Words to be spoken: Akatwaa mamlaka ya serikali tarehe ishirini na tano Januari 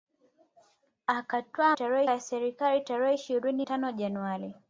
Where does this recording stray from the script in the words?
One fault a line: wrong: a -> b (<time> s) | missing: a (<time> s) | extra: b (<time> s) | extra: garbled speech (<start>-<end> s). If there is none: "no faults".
wrong: mamlaka -> tarehe (1.7 s)
missing: na (3.6 s)